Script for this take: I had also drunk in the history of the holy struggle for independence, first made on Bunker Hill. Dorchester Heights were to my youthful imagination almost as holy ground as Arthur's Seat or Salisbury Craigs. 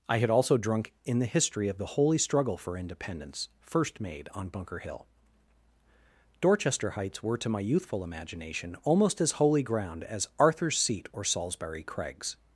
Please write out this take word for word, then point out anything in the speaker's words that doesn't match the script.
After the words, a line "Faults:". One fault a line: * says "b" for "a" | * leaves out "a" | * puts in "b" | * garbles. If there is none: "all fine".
I had also drunk in the history of the holy struggle for independence, first made on Bunker Hill. Dorchester Heights were to my youthful imagination almost as holy ground as Arthur's Seat or Salisbury Craigs.
Faults:
all fine